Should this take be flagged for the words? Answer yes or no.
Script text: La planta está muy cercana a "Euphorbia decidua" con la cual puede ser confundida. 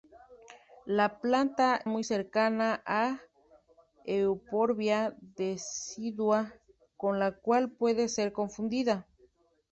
yes